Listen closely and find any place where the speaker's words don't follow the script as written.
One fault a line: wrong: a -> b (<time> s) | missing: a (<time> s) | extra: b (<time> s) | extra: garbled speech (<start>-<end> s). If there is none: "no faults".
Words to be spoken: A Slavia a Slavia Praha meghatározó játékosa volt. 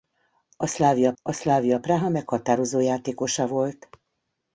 no faults